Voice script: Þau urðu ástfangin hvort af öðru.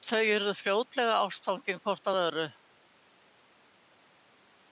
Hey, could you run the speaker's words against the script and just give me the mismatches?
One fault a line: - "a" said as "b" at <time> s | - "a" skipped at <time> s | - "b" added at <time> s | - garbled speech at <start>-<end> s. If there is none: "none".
- "fljótlega" added at 0.6 s